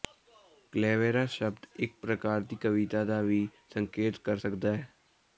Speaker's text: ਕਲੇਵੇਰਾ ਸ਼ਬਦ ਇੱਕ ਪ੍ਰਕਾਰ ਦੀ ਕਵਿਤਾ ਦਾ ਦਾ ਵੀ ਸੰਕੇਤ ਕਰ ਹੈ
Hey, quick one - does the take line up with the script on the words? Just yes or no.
no